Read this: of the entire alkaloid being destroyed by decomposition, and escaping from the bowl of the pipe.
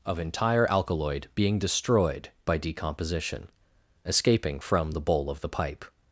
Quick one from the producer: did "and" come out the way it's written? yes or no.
no